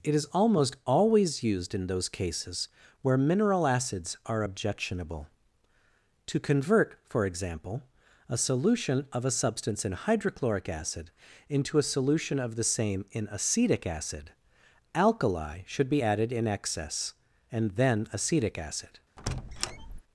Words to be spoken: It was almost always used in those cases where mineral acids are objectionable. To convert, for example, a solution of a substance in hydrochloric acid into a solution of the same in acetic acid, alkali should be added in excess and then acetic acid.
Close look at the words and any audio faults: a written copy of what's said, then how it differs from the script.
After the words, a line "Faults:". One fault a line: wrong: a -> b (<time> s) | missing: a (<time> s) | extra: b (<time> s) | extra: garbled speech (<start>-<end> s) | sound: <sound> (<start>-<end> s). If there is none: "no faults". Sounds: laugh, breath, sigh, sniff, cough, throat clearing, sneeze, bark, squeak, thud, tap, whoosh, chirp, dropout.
It is almost always used in those cases where mineral acids are objectionable. To convert, for example, a solution of a substance in hydrochloric acid into a solution of the same in acetic acid, alkali should be added in excess and then acetic acid.
Faults:
wrong: was -> is (0.1 s)
sound: squeak (19.2-20.0 s)